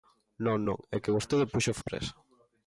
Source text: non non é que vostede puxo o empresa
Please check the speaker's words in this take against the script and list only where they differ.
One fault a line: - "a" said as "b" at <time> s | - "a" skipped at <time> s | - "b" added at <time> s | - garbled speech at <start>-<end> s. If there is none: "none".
none